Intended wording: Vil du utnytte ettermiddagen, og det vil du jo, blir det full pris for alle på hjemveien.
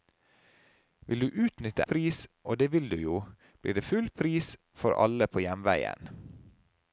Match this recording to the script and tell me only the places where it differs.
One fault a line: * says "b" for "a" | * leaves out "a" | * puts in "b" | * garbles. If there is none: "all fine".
* says "pris" for "ettermiddagen"